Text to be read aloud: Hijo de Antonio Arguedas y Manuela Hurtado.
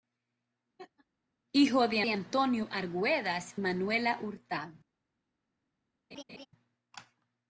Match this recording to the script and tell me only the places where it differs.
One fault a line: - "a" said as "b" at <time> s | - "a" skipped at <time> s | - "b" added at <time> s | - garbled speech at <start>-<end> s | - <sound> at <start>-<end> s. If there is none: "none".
- laugh at 0.8-1.1 s
- "de" added at 2.0 s
- "y" skipped at 3.5 s
- laugh at 6.1-6.5 s